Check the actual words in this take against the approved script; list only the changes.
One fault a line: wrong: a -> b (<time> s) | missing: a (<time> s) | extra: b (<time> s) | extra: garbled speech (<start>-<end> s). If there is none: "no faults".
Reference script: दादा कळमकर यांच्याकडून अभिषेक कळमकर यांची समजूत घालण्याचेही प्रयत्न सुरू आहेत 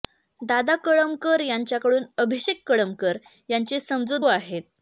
missing: घालण्याचेही प्रयत्न सुरू (4.2 s)